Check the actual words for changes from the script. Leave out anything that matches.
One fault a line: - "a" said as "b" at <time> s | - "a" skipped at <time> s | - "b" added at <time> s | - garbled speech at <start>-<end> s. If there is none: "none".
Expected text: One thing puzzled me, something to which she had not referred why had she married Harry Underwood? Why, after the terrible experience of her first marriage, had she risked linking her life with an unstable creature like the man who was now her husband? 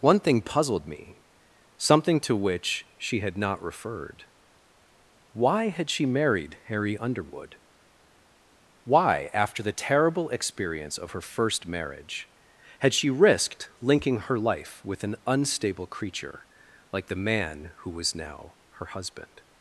none